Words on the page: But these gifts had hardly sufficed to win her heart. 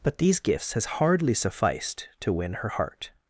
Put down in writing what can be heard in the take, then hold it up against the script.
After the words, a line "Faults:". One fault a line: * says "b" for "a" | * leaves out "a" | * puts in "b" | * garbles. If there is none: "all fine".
But these gifts has hardly sufficed to win her heart.
Faults:
* says "has" for "had"